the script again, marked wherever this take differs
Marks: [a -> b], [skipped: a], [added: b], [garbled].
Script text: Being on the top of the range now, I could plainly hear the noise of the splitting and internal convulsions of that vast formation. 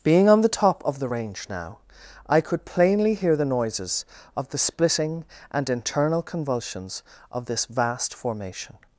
Being on the top of the range now, I could plainly hear the [noise -> noises] of the splitting and internal convulsions of [that -> this] vast formation.